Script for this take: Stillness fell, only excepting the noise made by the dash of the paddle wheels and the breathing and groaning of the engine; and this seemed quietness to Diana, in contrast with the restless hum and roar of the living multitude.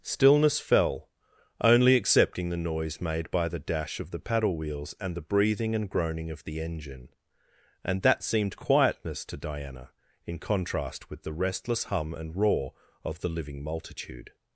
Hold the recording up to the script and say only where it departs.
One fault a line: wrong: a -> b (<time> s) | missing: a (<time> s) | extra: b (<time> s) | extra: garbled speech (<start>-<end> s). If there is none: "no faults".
wrong: this -> that (8.0 s)